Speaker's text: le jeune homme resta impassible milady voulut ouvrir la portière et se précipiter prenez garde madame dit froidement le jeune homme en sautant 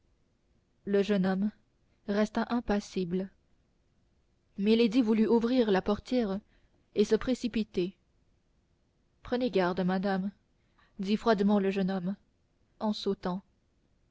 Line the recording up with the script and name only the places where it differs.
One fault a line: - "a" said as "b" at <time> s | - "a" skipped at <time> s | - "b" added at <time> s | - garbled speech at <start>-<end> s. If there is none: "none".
none